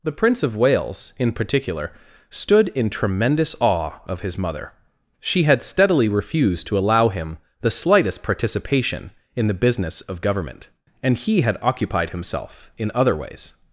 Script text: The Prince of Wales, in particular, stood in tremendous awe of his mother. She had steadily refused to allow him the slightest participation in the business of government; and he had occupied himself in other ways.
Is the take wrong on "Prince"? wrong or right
right